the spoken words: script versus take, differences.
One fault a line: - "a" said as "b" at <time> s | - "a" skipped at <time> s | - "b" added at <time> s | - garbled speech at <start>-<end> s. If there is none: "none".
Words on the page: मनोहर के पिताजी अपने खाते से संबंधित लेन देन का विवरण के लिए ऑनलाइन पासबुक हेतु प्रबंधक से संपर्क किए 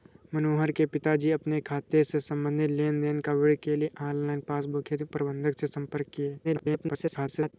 - garbled speech at 6.4-7.5 s